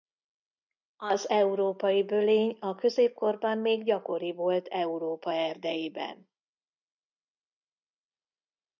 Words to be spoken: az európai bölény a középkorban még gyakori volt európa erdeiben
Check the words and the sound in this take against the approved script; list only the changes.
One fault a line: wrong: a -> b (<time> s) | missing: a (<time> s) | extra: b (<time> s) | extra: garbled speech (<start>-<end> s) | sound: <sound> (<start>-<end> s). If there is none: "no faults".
no faults